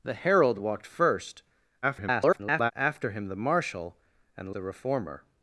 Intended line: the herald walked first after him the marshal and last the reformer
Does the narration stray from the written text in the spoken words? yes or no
yes